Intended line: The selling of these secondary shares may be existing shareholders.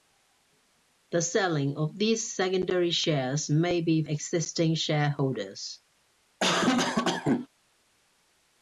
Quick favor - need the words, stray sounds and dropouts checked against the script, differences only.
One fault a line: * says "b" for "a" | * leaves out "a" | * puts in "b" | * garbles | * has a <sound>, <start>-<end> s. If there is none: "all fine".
* has a cough, 6.4-7.5 s